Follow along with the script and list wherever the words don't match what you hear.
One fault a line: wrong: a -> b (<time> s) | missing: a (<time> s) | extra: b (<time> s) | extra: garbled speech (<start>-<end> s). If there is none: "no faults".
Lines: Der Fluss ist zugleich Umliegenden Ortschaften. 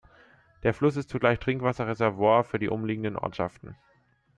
extra: Trinkwasserreservoir für die (1.4 s)